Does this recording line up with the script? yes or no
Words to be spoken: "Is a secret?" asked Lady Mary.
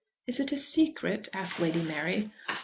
no